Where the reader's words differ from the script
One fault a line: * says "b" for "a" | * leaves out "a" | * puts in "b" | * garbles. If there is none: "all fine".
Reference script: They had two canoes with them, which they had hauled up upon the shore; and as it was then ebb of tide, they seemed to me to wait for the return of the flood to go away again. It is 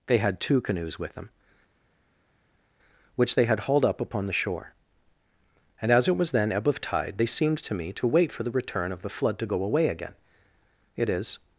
all fine